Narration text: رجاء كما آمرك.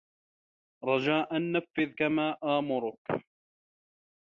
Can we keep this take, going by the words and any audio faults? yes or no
no